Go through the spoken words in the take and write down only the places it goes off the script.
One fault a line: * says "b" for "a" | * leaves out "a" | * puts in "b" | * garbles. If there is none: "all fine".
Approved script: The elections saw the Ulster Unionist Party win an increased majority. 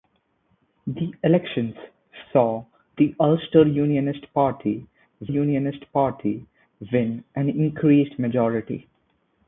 * puts in "Unionist Party"